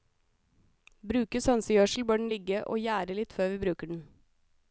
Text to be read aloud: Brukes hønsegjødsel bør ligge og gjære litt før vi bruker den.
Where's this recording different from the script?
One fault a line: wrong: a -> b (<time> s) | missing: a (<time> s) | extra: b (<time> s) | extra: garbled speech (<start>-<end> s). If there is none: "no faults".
extra: den (2.2 s)